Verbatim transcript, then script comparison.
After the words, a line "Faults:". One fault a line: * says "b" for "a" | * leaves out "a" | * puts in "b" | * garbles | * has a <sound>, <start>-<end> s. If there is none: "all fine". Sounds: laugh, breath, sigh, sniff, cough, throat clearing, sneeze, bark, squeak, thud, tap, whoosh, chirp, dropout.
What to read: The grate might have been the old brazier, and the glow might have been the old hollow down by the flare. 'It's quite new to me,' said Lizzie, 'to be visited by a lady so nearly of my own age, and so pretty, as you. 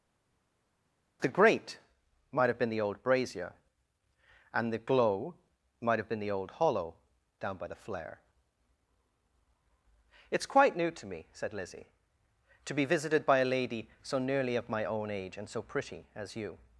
The grate might have been the old brazier, and the glow might have been the old hollow down by the flare. 'It's quite new to me,' said Lizzie, 'to be visited by a lady so nearly of my own age, and so pretty, as you.
Faults:
all fine